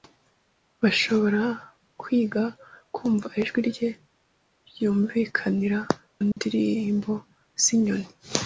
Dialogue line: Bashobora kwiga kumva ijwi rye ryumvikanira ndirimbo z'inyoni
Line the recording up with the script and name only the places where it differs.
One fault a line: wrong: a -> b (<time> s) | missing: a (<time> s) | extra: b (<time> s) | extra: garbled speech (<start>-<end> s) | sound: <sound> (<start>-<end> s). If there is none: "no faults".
sound: dropout (6.3-6.4 s)